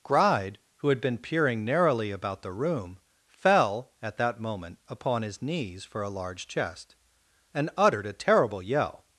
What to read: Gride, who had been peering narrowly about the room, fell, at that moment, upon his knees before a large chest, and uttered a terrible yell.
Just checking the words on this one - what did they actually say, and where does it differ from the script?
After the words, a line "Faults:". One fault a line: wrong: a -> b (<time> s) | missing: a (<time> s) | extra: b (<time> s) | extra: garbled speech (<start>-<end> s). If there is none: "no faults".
Gride, who had been peering narrowly about the room, fell, at that moment, upon his knees for a large chest, and uttered a terrible yell.
Faults:
wrong: before -> for (5.8 s)